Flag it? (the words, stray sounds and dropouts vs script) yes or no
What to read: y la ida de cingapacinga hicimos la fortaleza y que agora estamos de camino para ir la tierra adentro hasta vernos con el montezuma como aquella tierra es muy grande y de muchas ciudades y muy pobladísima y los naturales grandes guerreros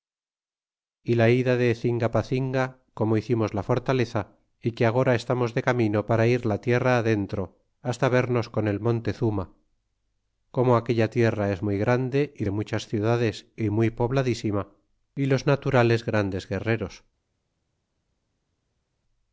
yes